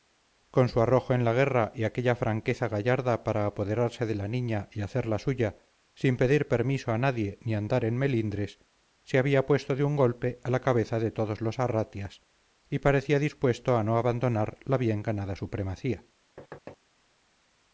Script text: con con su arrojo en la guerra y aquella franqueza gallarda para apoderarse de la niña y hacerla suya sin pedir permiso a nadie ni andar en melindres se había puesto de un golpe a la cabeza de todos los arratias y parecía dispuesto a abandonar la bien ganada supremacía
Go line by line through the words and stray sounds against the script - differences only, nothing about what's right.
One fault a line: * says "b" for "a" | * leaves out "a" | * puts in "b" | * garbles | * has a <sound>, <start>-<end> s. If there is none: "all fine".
* leaves out "con"
* puts in "no"
* has a thud, 16.4-16.8 s